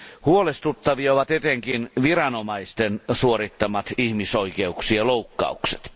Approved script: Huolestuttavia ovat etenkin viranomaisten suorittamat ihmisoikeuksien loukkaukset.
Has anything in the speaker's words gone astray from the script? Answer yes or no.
no